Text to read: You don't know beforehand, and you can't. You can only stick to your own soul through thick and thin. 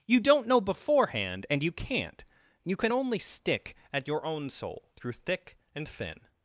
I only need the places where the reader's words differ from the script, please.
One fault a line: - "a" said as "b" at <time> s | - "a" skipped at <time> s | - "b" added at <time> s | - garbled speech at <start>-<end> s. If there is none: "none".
- "to" said as "at" at 3.9 s